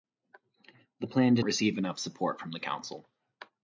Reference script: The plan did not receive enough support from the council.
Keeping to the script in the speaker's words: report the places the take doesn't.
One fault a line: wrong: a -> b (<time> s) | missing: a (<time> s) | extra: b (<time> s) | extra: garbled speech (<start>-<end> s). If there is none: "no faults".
missing: not (1.4 s)